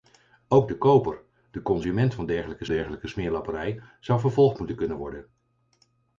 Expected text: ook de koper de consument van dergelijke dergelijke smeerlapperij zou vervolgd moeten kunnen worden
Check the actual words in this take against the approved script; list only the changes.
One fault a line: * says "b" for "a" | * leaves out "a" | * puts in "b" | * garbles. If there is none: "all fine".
all fine